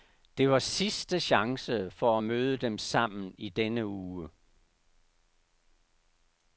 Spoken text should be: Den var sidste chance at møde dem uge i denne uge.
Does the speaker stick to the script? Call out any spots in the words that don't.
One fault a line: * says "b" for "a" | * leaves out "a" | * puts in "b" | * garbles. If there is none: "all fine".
* says "Det" for "Den"
* puts in "for"
* says "sammen" for "uge"